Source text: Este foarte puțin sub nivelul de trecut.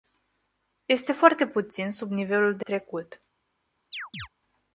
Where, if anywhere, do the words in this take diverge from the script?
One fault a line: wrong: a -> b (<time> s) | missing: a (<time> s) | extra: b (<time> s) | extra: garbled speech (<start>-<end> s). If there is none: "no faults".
no faults